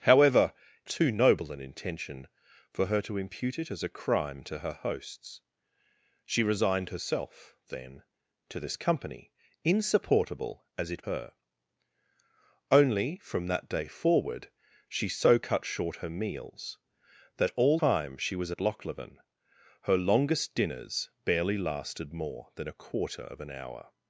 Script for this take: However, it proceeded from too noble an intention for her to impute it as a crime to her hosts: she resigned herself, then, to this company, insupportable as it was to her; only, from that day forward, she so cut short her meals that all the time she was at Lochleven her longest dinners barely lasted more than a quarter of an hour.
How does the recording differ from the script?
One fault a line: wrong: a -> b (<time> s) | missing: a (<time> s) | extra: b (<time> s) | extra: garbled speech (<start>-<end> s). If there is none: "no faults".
missing: it proceeded from (0.5 s)
missing: was to (11.1 s)
missing: the (17.8 s)